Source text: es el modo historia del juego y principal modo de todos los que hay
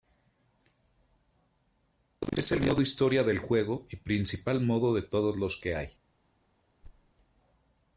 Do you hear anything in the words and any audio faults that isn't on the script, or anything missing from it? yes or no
yes